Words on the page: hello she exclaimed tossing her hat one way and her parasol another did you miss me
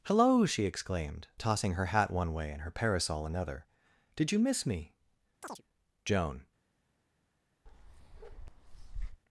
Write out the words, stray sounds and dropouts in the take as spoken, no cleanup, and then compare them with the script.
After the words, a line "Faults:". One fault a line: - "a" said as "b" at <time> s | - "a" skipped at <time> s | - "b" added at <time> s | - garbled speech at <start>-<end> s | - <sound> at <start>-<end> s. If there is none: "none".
hello she exclaimed tossing her hat one way and her parasol another did you miss me joan
Faults:
- chirp at 5.4-5.6 s
- "joan" added at 6.1 s
- bark at 7.7-9.2 s